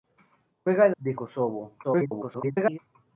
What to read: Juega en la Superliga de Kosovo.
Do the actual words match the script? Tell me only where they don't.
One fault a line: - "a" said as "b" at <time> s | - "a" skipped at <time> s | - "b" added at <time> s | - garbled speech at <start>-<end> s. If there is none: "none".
- "la Superliga" skipped at 0.9 s
- garbled speech at 1.8-2.8 s